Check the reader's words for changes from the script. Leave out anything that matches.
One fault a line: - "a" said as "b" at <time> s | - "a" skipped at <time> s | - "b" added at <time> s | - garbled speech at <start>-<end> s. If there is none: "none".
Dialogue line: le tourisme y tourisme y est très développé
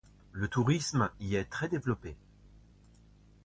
- "tourisme y" skipped at 1.3 s